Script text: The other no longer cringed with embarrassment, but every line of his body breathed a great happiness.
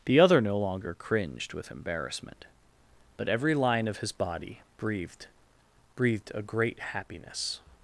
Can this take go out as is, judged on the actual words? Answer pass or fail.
fail